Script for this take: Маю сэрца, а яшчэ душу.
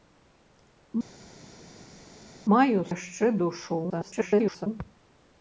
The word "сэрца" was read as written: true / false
false